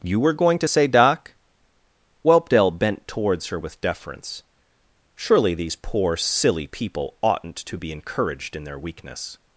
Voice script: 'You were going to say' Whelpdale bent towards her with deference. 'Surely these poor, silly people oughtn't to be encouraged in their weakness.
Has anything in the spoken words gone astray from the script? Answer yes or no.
yes